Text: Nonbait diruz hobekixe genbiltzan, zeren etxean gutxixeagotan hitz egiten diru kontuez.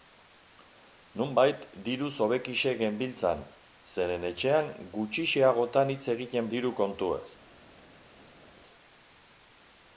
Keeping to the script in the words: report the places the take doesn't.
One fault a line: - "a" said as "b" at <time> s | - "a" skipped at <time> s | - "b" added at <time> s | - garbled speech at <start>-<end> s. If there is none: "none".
none